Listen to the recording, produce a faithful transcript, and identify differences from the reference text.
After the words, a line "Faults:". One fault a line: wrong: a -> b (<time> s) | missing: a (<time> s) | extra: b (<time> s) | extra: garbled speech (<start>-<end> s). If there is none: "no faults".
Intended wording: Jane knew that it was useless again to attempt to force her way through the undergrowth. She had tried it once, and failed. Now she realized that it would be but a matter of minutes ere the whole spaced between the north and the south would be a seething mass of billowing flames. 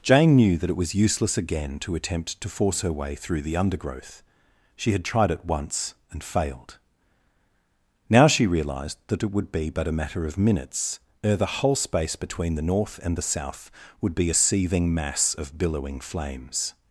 Jane knew that it was useless again to attempt to force her way through the undergrowth. She had tried it once, and failed. Now she realized that it would be but a matter of minutes ere the whole space between the north and the south would be a seething mass of billowing flames.
Faults:
wrong: spaced -> space (11.8 s)